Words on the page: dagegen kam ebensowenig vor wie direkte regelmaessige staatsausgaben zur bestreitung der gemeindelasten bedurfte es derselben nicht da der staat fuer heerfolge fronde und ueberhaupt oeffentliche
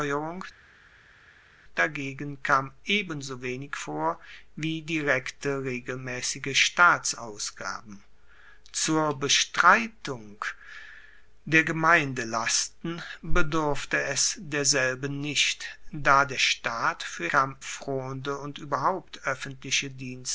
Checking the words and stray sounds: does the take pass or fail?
fail